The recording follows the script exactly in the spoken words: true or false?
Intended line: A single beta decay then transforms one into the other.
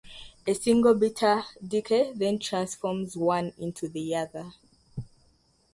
true